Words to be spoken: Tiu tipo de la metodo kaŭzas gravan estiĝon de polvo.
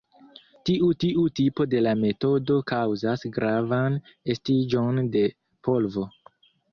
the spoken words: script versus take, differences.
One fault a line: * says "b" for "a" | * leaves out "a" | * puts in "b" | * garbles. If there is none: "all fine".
* puts in "tiu"